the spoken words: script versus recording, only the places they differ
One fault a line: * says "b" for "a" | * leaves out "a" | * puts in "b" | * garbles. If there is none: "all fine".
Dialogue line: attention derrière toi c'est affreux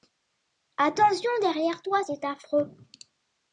all fine